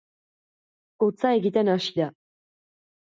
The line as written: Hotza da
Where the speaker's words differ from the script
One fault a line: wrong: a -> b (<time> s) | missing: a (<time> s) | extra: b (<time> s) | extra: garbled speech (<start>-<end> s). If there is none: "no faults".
extra: egiten hasi (1.4 s)